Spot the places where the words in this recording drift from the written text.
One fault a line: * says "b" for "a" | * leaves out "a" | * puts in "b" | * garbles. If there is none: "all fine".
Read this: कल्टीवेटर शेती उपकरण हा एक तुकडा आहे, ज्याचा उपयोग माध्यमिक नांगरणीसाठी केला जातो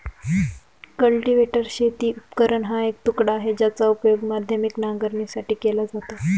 all fine